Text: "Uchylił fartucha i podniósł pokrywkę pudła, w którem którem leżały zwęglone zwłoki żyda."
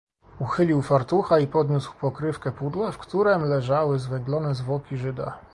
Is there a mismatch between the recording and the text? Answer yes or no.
yes